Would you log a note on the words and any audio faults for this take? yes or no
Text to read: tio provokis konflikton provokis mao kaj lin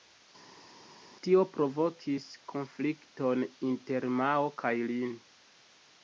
yes